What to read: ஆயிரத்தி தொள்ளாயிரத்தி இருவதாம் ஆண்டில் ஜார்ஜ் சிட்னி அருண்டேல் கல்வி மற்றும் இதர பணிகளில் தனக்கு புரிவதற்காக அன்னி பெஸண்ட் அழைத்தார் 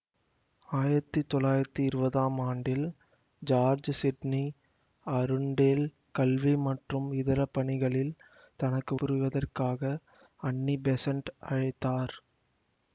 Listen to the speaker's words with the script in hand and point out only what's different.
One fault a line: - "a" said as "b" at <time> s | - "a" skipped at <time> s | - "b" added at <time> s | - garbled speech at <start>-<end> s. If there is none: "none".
none